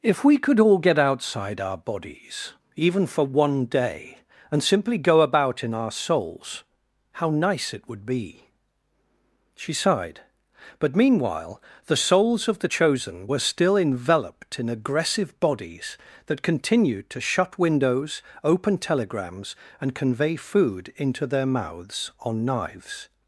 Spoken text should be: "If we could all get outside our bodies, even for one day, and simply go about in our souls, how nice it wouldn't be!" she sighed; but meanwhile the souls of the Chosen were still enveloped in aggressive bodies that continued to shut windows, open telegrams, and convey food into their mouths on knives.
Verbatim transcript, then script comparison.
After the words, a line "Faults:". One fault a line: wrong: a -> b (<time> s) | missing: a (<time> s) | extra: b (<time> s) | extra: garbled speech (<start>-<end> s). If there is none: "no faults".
"If we could all get outside our bodies, even for one day, and simply go about in our souls, how nice it would be!" she sighed; but meanwhile the souls of the Chosen were still enveloped in aggressive bodies that continued to shut windows, open telegrams, and convey food into their mouths on knives.
Faults:
wrong: wouldn't -> would (7.9 s)